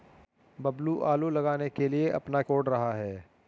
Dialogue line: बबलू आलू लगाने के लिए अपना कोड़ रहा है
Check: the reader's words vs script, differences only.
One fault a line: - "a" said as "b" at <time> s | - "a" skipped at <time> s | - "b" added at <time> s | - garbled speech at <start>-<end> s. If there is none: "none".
none